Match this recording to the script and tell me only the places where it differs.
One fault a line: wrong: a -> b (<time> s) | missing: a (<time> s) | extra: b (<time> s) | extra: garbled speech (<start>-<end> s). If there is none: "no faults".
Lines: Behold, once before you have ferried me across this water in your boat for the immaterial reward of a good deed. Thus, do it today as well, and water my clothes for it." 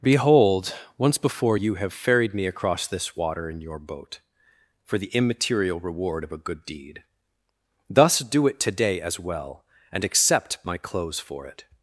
wrong: water -> accept (10.0 s)